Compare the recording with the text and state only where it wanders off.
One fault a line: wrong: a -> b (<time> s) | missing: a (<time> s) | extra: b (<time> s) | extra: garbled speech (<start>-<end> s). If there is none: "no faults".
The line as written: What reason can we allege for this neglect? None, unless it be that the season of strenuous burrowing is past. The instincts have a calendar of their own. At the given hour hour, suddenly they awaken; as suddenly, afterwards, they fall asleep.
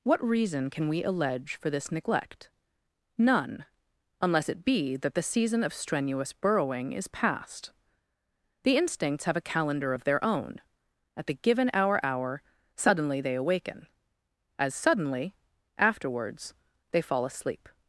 no faults